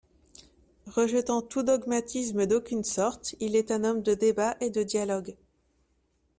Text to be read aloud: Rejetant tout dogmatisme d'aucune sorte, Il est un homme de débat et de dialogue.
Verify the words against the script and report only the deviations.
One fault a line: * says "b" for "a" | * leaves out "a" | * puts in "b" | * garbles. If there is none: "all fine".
all fine